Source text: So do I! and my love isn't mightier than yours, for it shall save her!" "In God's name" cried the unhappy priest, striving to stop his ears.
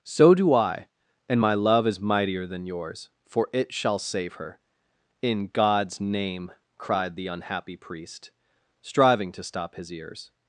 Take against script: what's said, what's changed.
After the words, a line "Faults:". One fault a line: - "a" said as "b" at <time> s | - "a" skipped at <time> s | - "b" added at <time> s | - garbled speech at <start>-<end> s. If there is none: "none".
So do I! and my love is mightier than yours, for it shall save her!" "In God's name" cried the unhappy priest, striving to stop his ears.
Faults:
- "isn't" said as "is" at 1.9 s